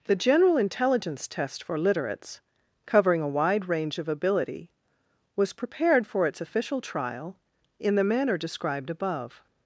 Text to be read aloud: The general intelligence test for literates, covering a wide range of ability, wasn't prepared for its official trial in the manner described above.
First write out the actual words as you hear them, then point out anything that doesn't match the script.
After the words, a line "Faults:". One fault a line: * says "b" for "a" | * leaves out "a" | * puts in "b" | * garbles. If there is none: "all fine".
The general intelligence test for literates, covering a wide range of ability, was prepared for its official trial in the manner described above.
Faults:
* says "was" for "wasn't"